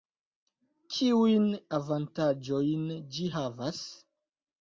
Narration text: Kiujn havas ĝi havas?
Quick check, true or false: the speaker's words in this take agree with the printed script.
false